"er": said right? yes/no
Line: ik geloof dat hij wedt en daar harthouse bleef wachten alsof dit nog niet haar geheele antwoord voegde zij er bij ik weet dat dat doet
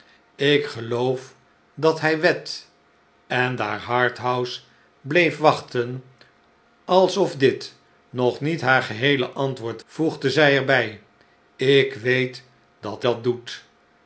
yes